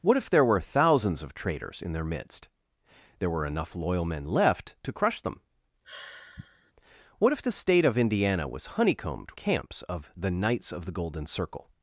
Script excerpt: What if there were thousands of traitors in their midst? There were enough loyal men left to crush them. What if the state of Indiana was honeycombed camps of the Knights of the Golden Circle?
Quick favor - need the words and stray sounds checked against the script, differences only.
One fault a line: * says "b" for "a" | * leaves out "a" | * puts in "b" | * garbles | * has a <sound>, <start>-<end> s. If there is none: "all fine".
* has a sigh, 5.8-6.7 s